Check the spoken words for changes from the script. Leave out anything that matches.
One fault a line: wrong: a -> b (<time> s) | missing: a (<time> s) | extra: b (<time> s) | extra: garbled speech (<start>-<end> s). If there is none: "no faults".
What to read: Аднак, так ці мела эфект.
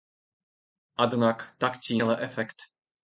no faults